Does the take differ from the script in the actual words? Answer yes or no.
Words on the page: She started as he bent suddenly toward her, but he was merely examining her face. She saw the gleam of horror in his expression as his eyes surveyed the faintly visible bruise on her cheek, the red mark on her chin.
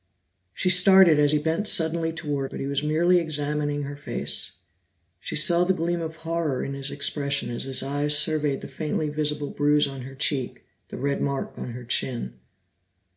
yes